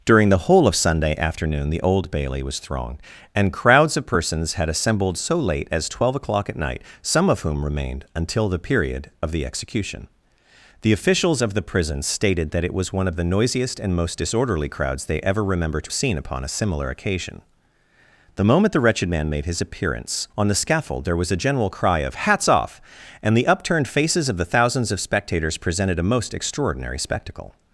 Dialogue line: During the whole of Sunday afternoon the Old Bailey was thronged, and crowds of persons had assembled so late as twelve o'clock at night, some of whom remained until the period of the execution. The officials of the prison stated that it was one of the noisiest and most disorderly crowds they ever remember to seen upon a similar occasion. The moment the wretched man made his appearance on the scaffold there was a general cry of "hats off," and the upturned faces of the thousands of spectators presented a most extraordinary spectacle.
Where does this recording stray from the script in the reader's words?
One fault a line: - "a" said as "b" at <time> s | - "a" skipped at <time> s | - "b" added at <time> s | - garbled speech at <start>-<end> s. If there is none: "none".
none